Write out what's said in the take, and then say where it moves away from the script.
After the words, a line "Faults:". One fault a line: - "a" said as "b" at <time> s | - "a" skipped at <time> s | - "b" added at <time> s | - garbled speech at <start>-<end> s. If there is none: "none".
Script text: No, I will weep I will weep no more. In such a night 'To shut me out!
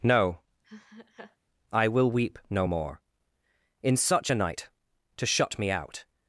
No, I will weep no more. In such a night 'To shut me out!
Faults:
- "I will weep" skipped at 2.4 s